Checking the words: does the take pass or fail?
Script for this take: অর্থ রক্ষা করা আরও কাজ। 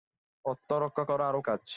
pass